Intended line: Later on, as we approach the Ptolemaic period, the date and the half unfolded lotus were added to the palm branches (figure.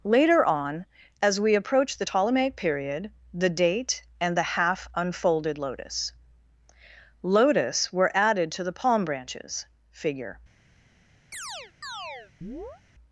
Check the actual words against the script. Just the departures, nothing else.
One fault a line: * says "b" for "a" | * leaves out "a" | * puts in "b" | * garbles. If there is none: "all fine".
* puts in "lotus"